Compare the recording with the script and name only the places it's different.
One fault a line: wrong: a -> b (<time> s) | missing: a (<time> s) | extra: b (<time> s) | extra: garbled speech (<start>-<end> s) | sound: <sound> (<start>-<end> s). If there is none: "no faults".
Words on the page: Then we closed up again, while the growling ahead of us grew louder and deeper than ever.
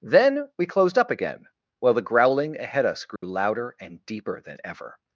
missing: of (2.9 s)
sound: dropout (3.2-3.2 s)